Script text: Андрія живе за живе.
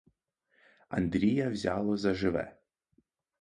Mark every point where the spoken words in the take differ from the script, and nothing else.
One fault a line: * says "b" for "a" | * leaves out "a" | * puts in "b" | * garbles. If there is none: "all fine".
* says "взяло" for "живе"